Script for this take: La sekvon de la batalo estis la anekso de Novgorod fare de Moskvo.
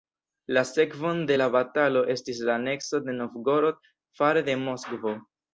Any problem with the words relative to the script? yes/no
no